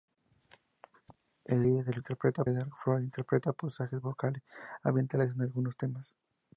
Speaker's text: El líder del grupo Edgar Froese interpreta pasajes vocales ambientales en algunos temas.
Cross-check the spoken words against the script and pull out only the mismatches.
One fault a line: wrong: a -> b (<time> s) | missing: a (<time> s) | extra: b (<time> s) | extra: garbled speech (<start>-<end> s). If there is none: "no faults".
wrong: grupo -> interpreta (2.0 s)